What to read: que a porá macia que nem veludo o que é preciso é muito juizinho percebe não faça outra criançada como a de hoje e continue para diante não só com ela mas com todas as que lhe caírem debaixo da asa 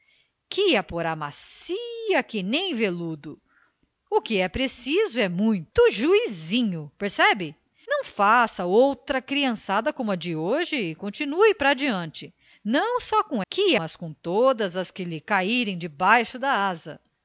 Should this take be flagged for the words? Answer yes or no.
yes